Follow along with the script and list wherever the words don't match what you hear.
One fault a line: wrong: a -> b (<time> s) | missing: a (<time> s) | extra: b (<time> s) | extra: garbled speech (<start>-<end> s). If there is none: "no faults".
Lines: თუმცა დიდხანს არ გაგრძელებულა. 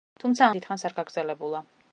no faults